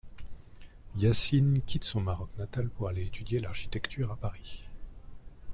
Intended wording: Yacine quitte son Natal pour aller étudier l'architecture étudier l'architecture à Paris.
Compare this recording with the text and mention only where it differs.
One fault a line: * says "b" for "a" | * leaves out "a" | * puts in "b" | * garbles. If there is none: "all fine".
* puts in "Maroc"
* leaves out "étudier l'architecture"